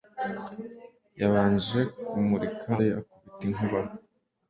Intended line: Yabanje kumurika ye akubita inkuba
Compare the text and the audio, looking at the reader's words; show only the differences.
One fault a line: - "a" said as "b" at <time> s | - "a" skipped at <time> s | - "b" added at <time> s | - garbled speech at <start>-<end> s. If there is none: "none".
none